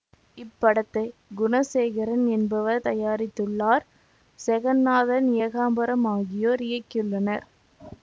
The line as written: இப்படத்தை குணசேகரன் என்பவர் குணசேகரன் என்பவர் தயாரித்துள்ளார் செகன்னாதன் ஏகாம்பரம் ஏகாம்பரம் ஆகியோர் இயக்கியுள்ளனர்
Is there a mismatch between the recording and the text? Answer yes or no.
yes